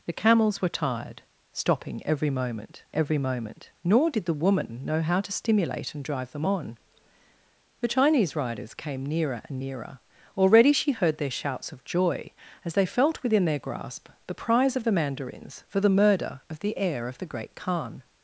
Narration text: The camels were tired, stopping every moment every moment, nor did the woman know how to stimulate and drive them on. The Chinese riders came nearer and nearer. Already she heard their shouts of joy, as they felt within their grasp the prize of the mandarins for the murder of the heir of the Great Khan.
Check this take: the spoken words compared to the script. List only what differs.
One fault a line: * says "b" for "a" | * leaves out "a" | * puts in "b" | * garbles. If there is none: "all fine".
all fine